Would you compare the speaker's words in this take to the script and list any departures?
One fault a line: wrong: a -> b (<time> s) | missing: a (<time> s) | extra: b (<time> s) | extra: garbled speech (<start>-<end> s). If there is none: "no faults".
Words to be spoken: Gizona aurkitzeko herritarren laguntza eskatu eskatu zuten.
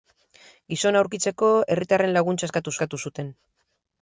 no faults